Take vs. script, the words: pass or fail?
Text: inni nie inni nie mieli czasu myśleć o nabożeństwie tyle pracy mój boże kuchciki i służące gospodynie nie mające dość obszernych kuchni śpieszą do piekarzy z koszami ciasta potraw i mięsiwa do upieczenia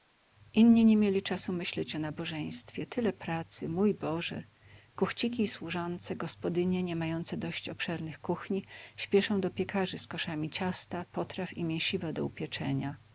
fail